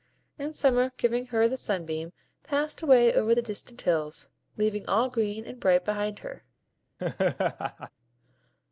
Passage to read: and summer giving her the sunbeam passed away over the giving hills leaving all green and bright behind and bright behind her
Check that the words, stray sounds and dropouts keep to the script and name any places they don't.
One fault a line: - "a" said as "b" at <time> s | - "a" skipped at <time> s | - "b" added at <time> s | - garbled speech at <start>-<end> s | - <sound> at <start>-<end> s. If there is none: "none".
- "giving" said as "distant" at 3.4 s
- "and bright behind" skipped at 6.2 s
- laugh at 7.0-7.9 s